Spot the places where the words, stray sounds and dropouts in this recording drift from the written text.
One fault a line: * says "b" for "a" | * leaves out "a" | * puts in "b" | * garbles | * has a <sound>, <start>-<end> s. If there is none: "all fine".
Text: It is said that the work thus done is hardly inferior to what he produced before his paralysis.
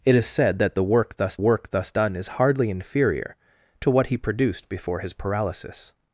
* puts in "work thus"